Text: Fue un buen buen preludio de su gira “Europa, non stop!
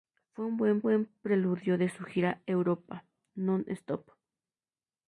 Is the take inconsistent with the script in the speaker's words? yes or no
no